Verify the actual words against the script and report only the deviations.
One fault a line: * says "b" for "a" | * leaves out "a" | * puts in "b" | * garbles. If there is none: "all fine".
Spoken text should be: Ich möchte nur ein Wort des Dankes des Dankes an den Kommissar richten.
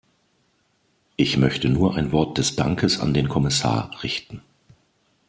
* leaves out "des Dankes"